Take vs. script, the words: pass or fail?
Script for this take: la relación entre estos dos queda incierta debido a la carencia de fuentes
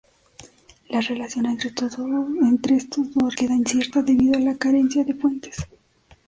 pass